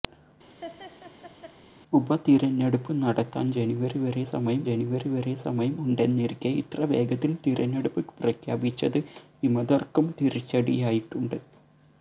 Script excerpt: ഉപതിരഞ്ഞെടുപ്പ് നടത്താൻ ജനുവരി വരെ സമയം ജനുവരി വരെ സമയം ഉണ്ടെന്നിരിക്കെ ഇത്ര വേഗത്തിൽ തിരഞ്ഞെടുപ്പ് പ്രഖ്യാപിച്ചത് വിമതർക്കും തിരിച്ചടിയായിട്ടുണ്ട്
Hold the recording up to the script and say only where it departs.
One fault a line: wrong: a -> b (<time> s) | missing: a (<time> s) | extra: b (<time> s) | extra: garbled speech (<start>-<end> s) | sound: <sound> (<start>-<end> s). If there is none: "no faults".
sound: laugh (0.6-1.6 s)